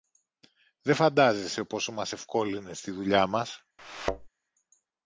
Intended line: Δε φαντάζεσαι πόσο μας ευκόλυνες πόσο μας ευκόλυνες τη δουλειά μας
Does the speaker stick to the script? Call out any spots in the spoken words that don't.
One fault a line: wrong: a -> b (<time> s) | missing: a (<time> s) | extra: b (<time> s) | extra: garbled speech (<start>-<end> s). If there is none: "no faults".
missing: πόσο μας ευκόλυνες (2.8 s)